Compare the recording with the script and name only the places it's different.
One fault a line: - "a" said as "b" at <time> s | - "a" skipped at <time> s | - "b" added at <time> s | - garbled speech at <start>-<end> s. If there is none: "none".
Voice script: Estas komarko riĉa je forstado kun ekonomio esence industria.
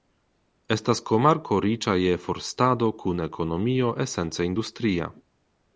none